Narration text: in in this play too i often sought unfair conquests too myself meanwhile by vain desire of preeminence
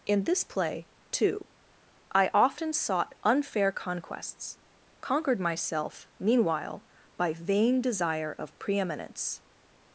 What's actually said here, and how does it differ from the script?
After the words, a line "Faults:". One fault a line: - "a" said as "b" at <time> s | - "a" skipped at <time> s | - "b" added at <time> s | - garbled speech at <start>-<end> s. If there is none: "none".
in this play too i often sought unfair conquests conquered myself meanwhile by vain desire of preeminence
Faults:
- "in" skipped at 0.2 s
- "too" said as "conquered" at 5.0 s